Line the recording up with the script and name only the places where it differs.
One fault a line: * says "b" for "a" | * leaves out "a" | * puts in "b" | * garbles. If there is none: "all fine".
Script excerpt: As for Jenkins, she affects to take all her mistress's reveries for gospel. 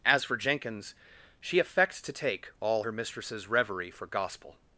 * says "reverie" for "reveries"